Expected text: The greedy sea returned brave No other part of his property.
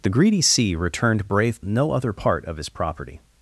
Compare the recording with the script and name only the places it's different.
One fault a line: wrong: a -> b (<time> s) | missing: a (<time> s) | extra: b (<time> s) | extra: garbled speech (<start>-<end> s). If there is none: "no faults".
no faults